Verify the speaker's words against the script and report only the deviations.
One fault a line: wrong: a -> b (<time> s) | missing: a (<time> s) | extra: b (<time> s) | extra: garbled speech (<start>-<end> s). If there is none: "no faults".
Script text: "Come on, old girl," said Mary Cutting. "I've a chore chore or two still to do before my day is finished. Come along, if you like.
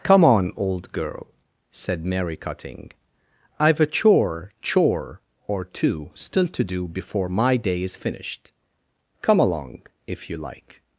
no faults